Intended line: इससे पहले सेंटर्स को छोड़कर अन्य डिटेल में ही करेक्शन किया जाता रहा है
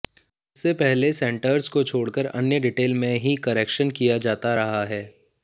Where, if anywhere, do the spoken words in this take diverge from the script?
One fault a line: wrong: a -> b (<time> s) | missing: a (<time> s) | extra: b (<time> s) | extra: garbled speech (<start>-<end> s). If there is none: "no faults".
no faults